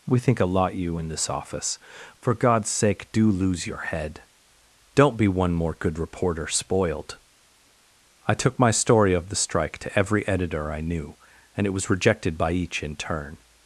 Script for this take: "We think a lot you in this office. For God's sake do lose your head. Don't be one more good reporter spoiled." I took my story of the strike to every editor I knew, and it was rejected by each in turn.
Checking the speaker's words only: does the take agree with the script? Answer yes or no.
yes